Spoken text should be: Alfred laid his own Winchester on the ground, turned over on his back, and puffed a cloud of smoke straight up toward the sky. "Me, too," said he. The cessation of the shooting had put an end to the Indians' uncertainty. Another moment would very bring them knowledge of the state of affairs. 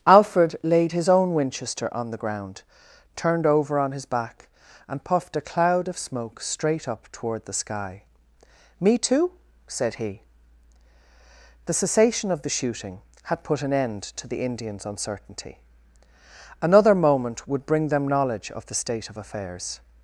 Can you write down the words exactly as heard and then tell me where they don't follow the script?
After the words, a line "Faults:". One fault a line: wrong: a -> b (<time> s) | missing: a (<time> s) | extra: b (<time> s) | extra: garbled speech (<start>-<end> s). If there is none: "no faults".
Alfred laid his own Winchester on the ground, turned over on his back, and puffed a cloud of smoke straight up toward the sky. "Me, too," said he. The cessation of the shooting had put an end to the Indians' uncertainty. Another moment would bring them knowledge of the state of affairs.
Faults:
missing: very (17.7 s)